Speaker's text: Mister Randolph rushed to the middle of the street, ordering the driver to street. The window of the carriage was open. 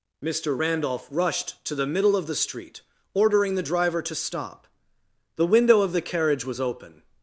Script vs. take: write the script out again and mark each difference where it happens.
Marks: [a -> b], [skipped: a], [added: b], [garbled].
Mister Randolph rushed to the middle of the street, ordering the driver to [street. -> stop] The window of the carriage was open.